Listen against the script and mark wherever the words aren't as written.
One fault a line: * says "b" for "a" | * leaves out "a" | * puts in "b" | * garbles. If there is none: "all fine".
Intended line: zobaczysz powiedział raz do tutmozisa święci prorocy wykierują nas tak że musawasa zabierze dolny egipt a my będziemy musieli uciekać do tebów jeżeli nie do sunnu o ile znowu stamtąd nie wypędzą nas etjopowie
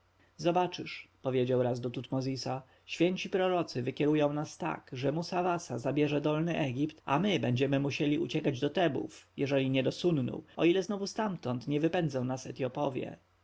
all fine